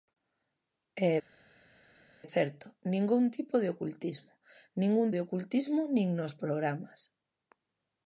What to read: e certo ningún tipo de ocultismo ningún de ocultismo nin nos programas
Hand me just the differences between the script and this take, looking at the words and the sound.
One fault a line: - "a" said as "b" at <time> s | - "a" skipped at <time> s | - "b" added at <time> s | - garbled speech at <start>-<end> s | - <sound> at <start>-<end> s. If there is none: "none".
none